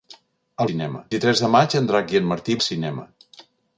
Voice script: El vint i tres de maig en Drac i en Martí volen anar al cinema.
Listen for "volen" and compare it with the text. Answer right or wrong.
wrong